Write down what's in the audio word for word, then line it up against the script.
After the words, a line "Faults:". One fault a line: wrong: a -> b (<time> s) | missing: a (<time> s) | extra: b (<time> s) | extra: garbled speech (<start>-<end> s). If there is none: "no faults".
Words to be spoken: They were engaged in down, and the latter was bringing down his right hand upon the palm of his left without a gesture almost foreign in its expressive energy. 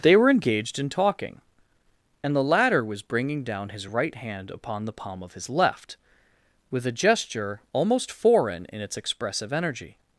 They were engaged in talking, and the latter was bringing down his right hand upon the palm of his left with a gesture almost foreign in its expressive energy.
Faults:
wrong: down -> talking (0.9 s)
wrong: without -> with (6.7 s)